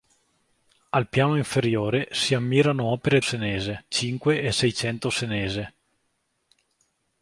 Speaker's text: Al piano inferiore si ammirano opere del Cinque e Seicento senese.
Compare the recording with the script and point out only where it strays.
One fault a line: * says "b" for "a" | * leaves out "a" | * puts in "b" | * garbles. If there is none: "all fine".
* says "senese" for "del"